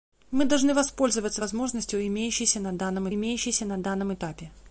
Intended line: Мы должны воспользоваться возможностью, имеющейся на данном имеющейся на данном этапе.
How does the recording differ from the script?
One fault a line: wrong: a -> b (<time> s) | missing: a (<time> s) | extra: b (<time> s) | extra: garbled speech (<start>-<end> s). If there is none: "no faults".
no faults